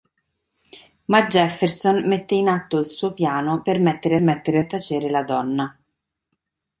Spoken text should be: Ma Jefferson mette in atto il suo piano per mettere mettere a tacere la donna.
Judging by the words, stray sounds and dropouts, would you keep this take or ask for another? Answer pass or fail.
pass